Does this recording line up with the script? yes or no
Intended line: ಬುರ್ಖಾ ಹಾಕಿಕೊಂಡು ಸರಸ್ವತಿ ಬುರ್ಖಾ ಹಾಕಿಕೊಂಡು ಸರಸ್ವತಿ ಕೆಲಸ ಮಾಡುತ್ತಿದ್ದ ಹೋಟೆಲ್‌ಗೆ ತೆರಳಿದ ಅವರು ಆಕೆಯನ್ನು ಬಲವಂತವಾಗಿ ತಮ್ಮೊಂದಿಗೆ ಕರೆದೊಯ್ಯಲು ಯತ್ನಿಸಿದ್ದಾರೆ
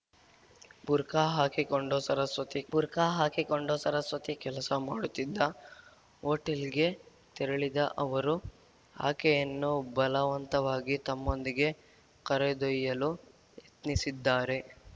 yes